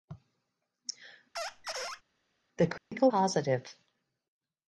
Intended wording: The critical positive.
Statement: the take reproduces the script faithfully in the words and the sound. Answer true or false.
false